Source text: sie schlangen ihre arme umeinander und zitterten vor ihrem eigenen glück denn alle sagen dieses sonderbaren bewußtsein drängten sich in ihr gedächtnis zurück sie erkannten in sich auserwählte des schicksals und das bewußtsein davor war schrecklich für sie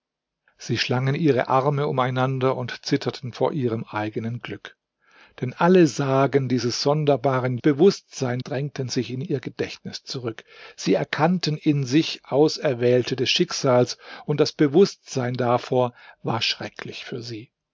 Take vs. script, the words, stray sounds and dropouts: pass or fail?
pass